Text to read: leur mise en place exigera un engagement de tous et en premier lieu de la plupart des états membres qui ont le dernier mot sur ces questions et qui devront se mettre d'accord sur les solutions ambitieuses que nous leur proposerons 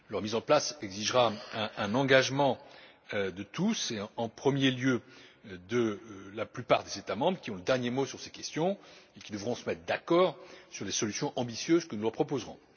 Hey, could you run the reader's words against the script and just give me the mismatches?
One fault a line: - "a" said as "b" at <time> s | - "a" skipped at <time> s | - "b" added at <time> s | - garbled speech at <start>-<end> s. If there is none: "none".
none